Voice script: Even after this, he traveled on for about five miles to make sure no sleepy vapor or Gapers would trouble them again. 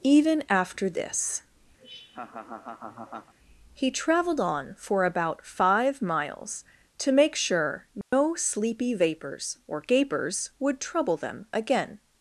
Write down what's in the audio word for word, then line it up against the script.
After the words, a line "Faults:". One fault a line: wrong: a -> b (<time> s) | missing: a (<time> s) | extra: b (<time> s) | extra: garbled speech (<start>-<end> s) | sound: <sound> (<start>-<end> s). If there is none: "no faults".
Even after this, he traveled on for about five miles to make sure no sleepy vapors or Gapers would trouble them again.
Faults:
sound: laugh (1.8-3.3 s)
sound: dropout (8.0-8.1 s)
wrong: vapor -> vapors (8.9 s)